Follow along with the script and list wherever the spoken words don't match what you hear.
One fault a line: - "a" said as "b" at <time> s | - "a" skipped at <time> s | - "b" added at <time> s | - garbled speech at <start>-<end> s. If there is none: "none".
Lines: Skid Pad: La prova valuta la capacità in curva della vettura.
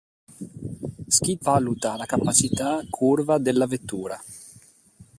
- "Pad La prova" skipped at 1.4 s
- "in" skipped at 2.8 s